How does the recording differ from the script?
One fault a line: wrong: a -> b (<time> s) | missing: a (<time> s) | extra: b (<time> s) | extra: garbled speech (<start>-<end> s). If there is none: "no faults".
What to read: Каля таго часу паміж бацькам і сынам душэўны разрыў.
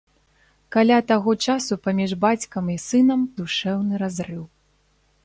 no faults